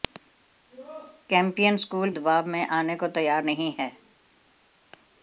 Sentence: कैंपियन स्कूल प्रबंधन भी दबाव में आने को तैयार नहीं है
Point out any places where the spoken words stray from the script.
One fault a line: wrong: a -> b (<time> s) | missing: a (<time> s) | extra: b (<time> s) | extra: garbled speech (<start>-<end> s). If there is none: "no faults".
missing: प्रबंधन भी (2.1 s)